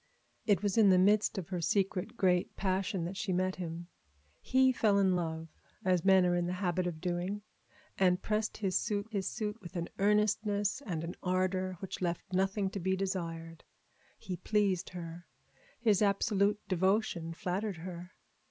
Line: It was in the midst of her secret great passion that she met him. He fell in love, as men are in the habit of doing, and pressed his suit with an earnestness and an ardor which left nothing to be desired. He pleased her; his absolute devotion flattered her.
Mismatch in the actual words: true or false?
true